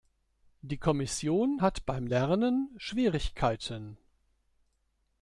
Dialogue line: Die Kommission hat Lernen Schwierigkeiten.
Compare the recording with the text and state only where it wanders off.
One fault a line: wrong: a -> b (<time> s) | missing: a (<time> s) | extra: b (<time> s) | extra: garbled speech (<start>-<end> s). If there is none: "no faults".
extra: beim (1.8 s)